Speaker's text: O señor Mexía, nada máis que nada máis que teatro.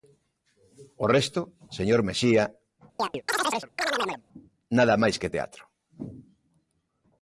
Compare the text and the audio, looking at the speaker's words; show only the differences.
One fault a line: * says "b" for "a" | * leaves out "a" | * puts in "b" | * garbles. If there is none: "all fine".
* puts in "resto"
* leaves out "nada máis que"